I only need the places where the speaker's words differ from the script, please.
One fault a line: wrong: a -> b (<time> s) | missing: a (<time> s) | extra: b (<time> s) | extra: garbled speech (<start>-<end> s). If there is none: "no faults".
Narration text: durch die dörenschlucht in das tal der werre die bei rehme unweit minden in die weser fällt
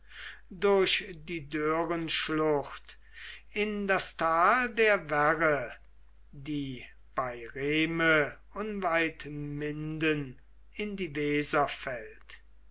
no faults